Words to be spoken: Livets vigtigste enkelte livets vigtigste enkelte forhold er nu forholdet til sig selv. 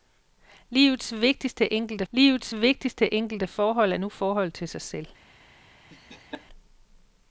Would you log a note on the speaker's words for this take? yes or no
no